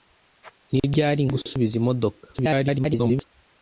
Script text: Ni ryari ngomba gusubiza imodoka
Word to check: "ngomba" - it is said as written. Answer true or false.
false